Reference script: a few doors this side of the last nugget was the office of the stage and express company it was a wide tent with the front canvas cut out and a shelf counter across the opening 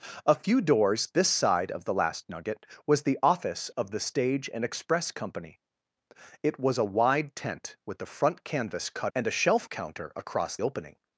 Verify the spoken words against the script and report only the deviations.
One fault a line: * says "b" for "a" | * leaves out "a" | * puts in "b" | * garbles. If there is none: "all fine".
* leaves out "out"
* leaves out "the"